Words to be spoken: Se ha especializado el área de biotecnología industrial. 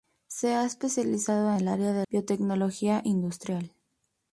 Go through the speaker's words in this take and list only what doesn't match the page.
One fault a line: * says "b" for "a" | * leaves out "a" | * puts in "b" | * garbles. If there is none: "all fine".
all fine